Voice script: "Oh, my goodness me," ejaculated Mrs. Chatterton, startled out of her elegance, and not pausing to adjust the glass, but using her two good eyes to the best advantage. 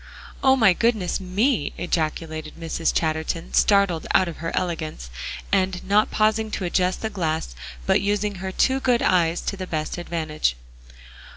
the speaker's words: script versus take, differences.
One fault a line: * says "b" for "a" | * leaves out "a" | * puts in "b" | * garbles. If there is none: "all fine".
all fine